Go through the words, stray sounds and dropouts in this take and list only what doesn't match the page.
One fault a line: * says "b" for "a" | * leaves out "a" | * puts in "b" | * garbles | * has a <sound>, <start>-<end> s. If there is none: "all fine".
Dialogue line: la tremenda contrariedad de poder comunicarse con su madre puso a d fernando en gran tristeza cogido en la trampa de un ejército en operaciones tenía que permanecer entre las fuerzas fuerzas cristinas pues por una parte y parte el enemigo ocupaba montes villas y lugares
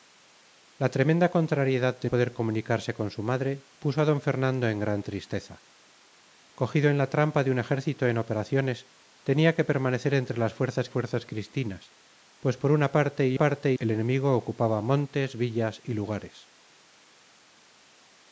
all fine